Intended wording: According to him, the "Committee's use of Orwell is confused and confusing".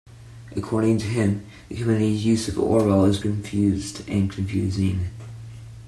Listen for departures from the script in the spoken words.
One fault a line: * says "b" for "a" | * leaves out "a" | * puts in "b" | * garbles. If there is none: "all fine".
all fine